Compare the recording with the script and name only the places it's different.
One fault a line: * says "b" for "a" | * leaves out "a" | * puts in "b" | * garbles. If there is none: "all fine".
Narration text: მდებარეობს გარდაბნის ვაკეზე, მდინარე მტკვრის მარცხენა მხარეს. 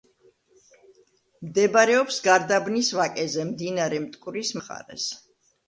* leaves out "მარცხენა"